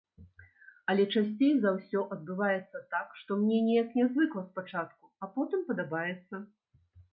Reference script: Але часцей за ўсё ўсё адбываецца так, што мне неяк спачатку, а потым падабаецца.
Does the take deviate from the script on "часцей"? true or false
false